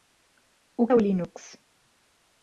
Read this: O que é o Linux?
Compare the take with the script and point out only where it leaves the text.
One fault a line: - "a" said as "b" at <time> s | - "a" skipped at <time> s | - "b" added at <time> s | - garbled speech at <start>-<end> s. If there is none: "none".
- "que" skipped at 0.9 s